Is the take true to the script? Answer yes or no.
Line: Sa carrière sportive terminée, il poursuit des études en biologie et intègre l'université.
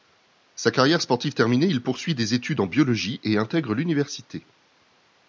yes